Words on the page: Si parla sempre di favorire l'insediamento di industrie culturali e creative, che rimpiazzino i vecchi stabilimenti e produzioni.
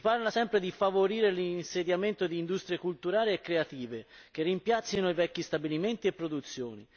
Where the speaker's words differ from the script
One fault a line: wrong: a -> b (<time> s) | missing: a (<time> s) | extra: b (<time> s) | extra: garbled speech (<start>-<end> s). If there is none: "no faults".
no faults